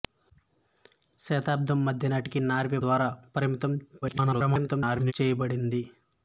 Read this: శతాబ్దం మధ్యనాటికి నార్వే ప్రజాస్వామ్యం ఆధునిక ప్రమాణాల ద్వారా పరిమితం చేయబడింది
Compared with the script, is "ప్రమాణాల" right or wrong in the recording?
wrong